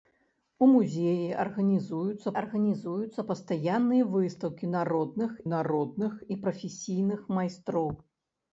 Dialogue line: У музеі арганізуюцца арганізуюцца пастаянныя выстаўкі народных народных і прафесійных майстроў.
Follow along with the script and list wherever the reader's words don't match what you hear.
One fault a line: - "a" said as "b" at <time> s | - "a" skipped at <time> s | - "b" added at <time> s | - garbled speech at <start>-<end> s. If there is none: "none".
none